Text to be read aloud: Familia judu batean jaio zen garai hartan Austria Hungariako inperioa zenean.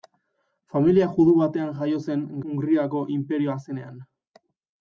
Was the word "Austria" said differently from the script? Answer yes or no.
yes